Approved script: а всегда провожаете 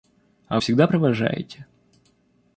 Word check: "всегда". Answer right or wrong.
right